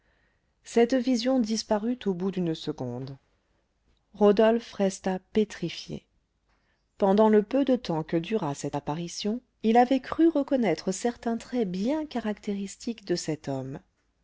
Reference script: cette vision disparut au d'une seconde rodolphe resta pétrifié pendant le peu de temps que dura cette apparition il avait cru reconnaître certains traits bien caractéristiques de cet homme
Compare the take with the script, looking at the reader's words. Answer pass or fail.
fail